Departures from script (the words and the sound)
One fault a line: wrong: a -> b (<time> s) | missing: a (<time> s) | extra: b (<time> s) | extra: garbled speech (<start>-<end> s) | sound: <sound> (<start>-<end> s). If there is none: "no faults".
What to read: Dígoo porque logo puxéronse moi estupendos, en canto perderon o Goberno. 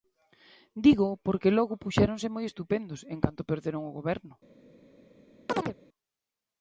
sound: chirp (5.5-5.8 s)